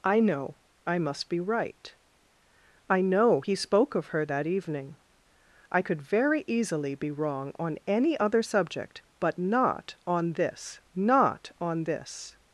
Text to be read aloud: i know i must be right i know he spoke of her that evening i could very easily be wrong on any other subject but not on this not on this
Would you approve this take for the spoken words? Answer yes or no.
yes